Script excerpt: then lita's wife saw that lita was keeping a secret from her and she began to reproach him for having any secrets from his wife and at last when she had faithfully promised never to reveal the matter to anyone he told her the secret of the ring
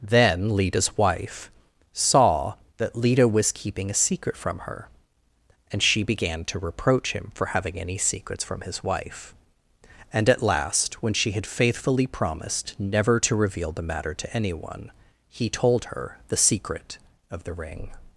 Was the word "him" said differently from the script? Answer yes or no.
no